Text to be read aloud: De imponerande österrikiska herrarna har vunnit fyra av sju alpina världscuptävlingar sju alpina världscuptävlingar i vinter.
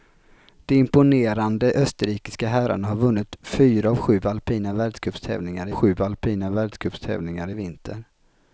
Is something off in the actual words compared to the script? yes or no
no